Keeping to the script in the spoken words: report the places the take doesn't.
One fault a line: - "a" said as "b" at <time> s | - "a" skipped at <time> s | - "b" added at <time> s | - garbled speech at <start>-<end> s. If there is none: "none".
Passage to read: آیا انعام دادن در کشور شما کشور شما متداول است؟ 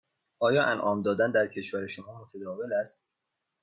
- "کشور شما" skipped at 2.2 s